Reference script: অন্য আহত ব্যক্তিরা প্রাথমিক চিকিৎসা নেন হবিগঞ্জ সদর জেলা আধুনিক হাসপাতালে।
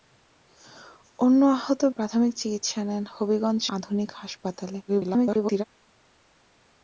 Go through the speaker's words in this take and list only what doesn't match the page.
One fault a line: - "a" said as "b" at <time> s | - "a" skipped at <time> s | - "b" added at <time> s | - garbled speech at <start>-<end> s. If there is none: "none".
- "ব্যক্তিরা" skipped at 1.8 s
- "সদর জেলা" skipped at 3.6 s
- garbled speech at 4.9-5.6 s